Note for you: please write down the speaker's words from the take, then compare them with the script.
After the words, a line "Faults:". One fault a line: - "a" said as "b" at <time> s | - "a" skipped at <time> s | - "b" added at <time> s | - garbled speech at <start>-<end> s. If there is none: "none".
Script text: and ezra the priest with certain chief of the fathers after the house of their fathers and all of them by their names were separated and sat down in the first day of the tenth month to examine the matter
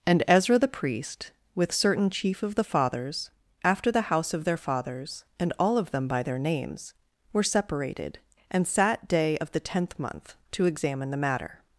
and ezra the priest with certain chief of the fathers after the house of their fathers and all of them by their names were separated and sat day of the tenth month to examine the matter
Faults:
- "down in the first" skipped at 9.1 s